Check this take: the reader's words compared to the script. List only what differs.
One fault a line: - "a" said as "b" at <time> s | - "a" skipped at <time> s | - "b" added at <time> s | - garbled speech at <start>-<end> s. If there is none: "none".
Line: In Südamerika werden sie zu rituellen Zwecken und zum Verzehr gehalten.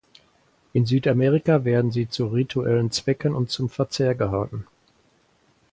none